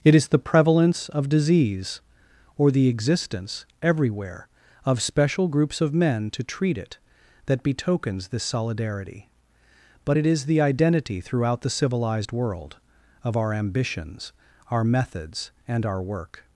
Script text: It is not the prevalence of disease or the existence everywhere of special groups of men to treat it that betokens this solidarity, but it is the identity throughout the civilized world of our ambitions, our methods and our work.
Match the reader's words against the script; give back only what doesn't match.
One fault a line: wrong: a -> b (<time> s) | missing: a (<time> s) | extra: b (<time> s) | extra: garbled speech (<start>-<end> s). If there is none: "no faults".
missing: not (0.3 s)